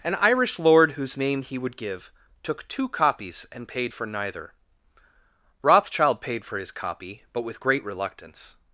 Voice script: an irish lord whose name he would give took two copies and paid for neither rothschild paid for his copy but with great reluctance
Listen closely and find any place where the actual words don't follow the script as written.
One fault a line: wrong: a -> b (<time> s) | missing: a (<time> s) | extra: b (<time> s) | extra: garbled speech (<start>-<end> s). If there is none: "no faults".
no faults